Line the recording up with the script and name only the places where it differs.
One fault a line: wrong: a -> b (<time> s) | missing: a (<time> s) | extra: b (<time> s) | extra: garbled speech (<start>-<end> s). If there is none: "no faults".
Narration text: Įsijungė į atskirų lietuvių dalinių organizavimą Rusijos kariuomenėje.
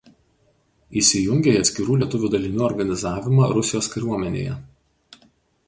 no faults